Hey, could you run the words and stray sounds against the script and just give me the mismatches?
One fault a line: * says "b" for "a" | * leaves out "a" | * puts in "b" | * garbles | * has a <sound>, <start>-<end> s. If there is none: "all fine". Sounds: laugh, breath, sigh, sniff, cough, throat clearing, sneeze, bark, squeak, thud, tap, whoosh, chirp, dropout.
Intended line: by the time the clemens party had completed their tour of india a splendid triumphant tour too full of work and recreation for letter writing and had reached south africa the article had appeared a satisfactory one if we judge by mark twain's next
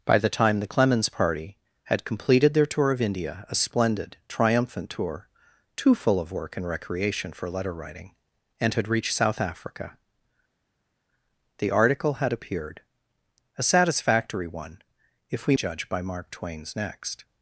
all fine